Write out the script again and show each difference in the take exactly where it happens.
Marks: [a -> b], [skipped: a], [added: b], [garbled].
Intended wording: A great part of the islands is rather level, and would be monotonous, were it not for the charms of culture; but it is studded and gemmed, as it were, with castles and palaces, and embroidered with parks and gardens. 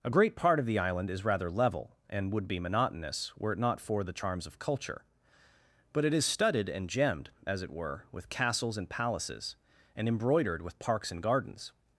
A great part of the [islands -> island] is rather level, and would be monotonous, were it not for the charms of culture; but it is studded and gemmed, as it were, with castles and palaces, and embroidered with parks and gardens.